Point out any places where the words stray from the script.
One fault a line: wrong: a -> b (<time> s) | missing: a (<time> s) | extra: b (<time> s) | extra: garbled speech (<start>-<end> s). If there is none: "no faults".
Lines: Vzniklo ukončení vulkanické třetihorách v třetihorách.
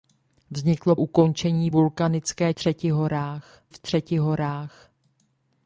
no faults